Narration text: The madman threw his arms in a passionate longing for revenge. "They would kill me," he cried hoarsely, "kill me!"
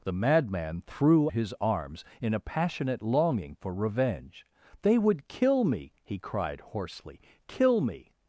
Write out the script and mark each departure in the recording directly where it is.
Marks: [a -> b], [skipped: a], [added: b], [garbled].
The madman threw his arms in a passionate longing for revenge. "They would kill me," he cried hoarsely, "kill me!"